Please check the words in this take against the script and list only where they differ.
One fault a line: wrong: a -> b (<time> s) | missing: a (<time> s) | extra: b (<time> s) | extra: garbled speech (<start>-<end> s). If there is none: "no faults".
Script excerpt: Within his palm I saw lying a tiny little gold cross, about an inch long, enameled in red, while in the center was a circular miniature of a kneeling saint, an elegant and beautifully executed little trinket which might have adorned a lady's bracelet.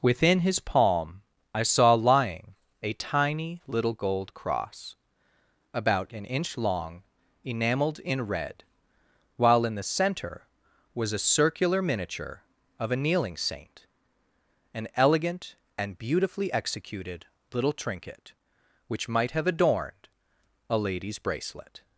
no faults